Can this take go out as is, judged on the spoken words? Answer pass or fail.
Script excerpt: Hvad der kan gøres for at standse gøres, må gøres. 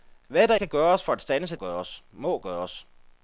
pass